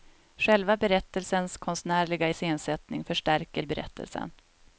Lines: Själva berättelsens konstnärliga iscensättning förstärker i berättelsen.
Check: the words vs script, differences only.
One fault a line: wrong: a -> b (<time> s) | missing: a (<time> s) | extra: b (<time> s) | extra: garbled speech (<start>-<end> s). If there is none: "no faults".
no faults